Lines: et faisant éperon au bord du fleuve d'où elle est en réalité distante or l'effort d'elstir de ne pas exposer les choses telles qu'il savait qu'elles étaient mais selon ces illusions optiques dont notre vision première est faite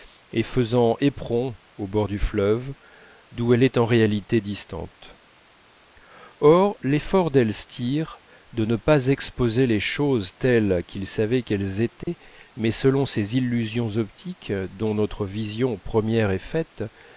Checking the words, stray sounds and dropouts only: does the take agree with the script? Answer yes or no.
no